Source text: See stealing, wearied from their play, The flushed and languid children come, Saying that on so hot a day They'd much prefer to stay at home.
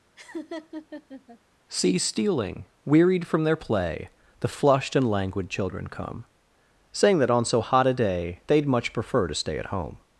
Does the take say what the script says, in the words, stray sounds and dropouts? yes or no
no